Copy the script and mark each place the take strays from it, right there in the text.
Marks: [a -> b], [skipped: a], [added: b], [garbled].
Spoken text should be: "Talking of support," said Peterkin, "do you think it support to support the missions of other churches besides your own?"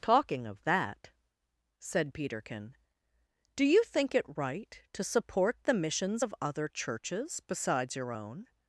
"Talking of [support," -> that] said Peterkin, "do you think it [support -> right] to support the missions of other churches besides your own?"